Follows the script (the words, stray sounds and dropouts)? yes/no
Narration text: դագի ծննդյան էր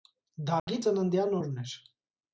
no